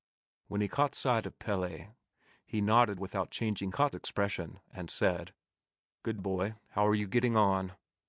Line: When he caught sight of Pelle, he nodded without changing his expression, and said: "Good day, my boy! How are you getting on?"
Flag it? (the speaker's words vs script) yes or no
yes